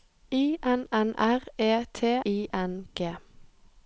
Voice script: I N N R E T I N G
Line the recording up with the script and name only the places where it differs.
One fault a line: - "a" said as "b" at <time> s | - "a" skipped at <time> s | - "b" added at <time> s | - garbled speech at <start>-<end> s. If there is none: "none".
none